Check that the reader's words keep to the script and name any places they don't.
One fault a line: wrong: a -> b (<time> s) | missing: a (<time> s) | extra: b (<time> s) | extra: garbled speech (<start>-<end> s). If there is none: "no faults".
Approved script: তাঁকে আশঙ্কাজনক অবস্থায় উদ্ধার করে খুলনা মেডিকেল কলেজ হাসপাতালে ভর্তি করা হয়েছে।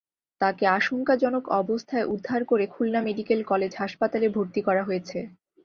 no faults